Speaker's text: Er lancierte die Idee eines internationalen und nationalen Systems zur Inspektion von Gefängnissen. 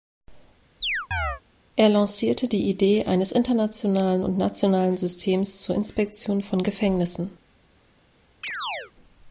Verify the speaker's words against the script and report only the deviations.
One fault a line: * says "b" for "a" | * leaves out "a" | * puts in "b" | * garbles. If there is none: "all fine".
all fine